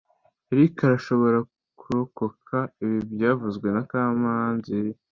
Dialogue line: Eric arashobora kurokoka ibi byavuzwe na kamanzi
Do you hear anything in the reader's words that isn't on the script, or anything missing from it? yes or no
no